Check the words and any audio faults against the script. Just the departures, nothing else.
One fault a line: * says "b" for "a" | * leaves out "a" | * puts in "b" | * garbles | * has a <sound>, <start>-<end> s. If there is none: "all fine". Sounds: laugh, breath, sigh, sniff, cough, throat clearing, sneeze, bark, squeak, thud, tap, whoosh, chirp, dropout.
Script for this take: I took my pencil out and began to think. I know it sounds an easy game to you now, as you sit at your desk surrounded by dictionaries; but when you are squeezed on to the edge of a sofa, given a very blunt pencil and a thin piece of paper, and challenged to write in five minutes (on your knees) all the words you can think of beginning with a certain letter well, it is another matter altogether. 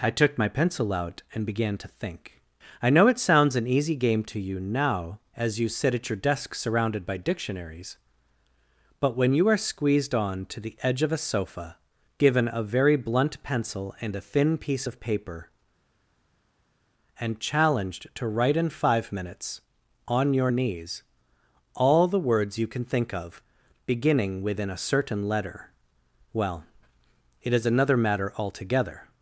* says "within" for "with"